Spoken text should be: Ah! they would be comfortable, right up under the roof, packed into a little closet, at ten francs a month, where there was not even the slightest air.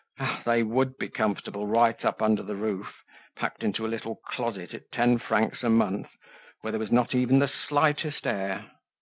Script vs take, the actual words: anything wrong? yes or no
no